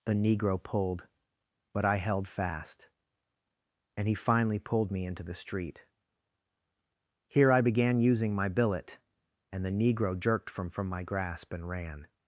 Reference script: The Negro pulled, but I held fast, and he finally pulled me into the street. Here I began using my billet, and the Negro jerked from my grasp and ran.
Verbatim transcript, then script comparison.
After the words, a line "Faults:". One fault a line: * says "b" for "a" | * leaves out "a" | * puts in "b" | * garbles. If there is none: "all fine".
The Negro pulled, but I held fast, and he finally pulled me into the street. Here I began using my billet, and the Negro jerked from from my grasp and ran.
Faults:
* puts in "from"